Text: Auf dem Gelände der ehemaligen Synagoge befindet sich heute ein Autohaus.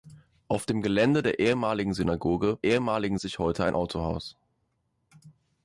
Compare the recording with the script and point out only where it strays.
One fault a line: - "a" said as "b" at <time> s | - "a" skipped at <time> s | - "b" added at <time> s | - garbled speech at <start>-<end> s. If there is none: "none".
- "befindet" said as "ehemaligen" at 2.6 s